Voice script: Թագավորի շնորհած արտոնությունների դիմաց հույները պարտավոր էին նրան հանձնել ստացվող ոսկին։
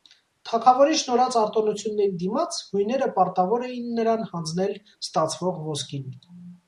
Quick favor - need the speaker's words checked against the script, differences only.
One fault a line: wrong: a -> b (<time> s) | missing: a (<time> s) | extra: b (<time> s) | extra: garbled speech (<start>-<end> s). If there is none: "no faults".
no faults